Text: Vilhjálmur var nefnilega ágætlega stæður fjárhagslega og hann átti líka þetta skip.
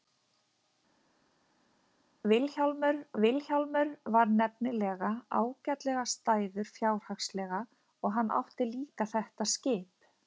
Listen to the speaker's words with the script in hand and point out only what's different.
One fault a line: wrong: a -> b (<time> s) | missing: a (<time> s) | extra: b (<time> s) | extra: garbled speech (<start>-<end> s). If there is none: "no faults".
extra: vilhjálmur (3.2 s)